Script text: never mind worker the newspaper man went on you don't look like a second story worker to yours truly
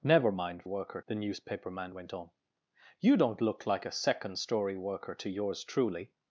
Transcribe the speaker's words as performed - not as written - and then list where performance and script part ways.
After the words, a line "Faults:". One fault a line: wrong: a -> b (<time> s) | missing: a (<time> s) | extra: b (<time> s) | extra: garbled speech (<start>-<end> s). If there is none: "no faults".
never mind worker the newspaper man went on you don't look like a second story worker to yours truly
Faults:
no faults